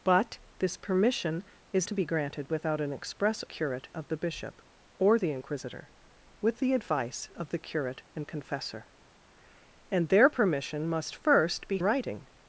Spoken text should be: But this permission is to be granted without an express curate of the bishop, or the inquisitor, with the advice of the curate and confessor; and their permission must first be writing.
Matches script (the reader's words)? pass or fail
pass